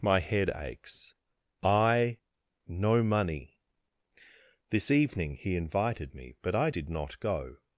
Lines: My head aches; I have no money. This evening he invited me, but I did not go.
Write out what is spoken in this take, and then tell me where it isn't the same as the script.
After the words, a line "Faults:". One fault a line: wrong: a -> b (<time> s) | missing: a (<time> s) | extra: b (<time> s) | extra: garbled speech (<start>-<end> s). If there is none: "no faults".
My head aches; I no money. This evening he invited me, but I did not go.
Faults:
missing: have (2.2 s)